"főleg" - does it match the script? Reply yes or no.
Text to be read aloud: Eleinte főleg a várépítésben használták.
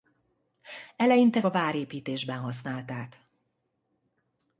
no